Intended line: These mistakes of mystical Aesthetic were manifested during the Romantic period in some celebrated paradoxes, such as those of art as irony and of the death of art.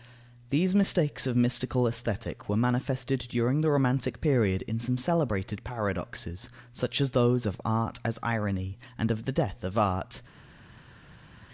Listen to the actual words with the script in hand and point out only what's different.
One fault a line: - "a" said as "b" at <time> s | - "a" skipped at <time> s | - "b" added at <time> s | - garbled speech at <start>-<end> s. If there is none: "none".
none